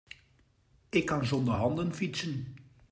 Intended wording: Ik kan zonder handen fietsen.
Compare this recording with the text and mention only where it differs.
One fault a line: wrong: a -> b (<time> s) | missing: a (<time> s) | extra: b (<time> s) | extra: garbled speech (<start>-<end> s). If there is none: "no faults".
no faults